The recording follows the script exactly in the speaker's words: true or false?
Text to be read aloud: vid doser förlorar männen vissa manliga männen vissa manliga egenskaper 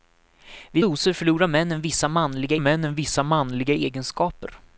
true